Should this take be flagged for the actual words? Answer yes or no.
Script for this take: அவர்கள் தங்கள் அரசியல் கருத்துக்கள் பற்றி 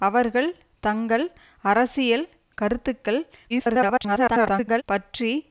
yes